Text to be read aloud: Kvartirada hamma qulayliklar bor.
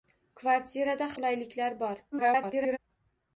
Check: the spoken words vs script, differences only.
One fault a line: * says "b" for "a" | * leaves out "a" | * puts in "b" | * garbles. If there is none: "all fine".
* leaves out "hamma"
* garbles